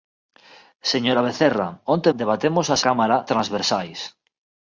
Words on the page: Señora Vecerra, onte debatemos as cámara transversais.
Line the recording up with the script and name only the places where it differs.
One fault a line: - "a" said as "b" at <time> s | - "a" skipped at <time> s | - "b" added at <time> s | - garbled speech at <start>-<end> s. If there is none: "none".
none